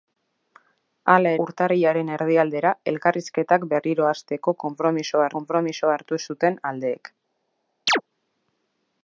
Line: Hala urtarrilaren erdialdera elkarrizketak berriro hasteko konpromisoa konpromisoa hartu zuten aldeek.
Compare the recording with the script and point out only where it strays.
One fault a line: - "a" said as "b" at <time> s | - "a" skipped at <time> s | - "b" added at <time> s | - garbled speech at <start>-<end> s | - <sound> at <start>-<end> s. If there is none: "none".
- chirp at 7.9-8.0 s